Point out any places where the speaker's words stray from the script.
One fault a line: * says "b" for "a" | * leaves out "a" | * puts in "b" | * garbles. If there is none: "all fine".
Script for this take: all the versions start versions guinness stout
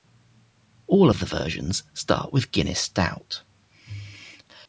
* puts in "of"
* says "with" for "versions"